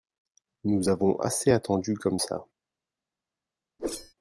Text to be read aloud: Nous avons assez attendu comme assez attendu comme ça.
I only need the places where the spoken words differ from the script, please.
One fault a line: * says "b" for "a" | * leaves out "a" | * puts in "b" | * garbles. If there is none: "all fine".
* leaves out "assez attendu comme"